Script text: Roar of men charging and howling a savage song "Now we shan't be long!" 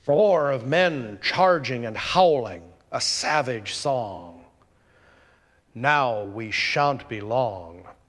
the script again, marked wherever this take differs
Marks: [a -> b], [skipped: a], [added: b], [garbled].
Roar of men charging and howling a savage song "Now we shan't be long!"